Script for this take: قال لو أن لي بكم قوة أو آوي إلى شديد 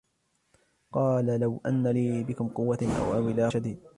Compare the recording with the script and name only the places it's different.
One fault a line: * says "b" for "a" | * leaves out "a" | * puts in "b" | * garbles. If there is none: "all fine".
all fine